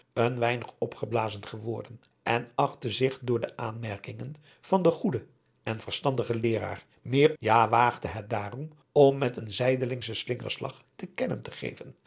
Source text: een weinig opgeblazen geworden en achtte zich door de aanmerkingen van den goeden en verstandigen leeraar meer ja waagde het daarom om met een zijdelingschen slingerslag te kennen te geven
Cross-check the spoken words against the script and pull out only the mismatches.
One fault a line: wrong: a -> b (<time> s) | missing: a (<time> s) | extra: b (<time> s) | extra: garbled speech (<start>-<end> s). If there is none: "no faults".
no faults